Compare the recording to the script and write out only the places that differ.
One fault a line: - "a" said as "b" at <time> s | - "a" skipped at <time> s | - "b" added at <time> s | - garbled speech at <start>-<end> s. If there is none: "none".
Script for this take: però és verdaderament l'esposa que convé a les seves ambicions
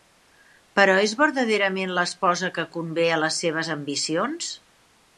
none